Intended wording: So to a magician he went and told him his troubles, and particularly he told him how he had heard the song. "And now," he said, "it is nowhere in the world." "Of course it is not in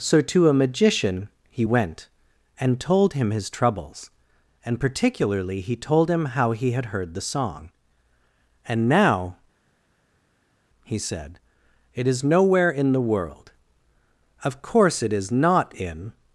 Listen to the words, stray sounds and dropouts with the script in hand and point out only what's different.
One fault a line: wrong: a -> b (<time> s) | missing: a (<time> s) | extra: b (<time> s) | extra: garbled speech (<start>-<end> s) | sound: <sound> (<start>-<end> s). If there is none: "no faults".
no faults